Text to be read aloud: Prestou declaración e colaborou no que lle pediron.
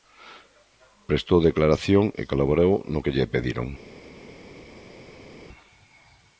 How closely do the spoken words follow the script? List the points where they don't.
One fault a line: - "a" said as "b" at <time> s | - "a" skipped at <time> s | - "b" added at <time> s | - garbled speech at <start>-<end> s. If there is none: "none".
none